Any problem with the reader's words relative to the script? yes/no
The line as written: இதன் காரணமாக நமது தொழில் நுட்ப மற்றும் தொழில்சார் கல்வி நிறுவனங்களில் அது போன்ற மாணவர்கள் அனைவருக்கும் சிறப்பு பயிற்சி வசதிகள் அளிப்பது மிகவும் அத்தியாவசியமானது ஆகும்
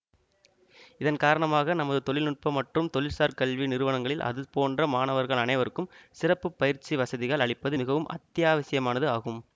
no